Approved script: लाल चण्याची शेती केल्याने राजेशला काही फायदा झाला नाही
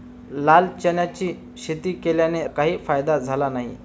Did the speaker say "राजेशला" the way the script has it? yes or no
no